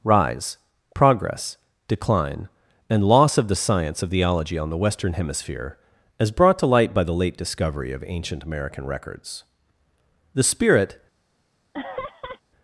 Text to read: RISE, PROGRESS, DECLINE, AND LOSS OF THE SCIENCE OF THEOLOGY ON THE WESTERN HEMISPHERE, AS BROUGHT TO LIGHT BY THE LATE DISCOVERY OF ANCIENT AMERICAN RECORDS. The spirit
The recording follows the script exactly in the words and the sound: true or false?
false